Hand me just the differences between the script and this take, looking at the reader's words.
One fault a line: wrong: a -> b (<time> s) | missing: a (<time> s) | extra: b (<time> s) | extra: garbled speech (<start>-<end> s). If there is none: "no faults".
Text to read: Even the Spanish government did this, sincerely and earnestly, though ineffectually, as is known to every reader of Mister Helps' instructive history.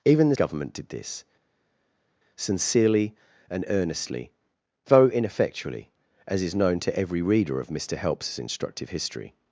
missing: Spanish (0.3 s)